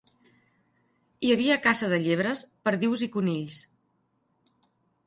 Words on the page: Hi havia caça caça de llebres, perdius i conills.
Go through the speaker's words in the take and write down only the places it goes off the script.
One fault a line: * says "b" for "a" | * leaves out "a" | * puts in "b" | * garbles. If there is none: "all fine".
* leaves out "caça"